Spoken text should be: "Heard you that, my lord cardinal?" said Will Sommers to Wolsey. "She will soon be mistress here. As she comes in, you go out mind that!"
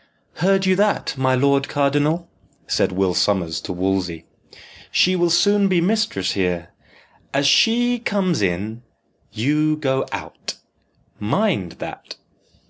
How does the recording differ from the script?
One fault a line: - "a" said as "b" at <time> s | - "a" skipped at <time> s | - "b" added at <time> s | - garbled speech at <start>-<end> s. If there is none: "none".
none